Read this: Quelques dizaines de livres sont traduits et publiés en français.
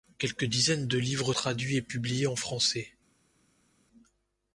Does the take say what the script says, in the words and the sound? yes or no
no